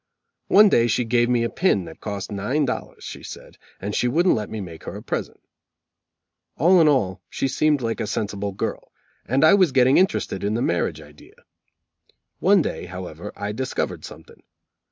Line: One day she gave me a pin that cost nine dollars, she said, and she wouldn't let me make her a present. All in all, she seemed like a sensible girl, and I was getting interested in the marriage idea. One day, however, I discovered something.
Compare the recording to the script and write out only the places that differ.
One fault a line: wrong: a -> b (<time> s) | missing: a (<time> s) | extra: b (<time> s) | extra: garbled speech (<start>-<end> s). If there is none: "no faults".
no faults